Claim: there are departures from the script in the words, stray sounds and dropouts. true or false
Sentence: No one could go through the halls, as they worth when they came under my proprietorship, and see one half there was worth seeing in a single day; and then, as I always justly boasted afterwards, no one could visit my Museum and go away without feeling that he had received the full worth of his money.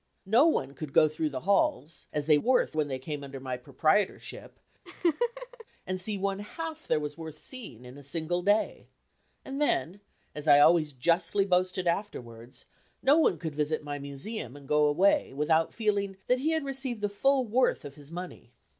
true